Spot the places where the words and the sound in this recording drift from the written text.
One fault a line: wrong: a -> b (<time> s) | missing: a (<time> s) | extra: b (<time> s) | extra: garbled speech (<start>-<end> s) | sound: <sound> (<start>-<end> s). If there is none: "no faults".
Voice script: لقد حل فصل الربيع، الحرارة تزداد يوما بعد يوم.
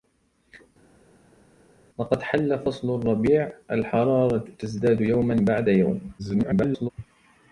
extra: garbled speech (6.2-6.9 s)